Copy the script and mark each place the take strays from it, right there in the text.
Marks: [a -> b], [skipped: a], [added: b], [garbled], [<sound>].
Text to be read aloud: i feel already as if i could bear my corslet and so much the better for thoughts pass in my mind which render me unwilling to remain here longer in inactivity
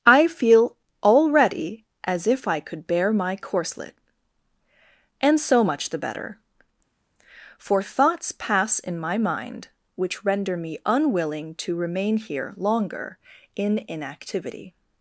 i feel already as if i could bear my corslet and so much the better for thoughts pass in my mind which render me unwilling to remain here longer in inactivity